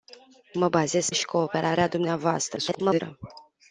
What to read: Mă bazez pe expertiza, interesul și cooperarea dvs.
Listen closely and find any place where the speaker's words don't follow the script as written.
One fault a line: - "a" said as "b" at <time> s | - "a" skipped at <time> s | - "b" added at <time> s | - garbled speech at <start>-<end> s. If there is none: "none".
- "pe expertiza interesul" skipped at 1.1 s
- garbled speech at 2.6-3.0 s